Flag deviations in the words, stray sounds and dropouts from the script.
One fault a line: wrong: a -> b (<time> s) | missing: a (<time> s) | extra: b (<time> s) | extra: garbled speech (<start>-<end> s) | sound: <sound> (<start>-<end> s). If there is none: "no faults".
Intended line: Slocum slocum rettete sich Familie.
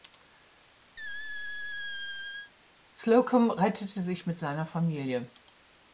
sound: squeak (1.0-2.5 s)
missing: slocum (3.5 s)
extra: mit seiner (4.3 s)